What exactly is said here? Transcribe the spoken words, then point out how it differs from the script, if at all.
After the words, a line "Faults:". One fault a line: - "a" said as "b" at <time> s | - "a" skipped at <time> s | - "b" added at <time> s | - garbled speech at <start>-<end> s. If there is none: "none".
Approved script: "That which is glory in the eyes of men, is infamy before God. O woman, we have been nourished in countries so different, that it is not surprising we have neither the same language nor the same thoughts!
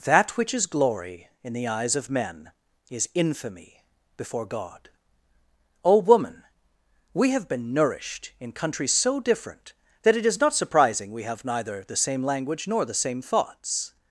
"That which is glory in the eyes of men, is infamy before God. O woman, we have been nourished in countries so different, that it is not surprising we have neither the same language nor the same thoughts!
Faults:
none